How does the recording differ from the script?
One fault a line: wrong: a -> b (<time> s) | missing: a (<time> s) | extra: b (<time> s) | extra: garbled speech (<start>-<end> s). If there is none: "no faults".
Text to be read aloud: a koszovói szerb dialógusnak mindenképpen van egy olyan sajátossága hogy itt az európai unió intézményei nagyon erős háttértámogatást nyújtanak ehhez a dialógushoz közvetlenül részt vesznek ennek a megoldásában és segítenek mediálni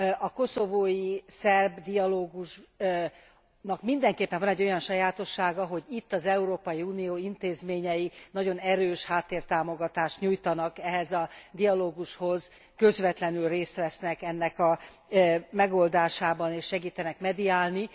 no faults